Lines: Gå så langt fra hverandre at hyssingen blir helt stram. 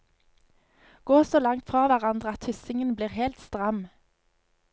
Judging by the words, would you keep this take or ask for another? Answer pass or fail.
pass